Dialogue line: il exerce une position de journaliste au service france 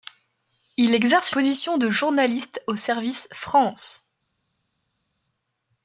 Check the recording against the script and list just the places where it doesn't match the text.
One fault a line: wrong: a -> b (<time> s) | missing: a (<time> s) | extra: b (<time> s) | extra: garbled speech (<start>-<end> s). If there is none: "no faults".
missing: une (1.3 s)